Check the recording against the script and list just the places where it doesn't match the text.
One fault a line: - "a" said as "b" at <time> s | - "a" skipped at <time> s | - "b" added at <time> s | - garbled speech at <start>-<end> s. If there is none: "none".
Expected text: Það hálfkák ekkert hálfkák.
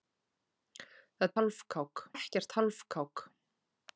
none